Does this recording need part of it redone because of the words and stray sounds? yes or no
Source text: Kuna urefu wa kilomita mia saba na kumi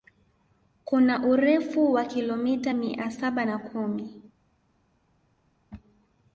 no